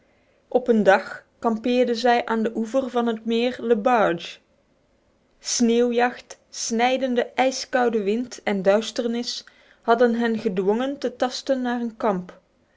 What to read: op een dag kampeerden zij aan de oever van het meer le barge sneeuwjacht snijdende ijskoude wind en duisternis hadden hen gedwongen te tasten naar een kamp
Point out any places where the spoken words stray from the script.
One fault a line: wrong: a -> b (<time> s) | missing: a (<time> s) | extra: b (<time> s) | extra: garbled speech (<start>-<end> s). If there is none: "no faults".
no faults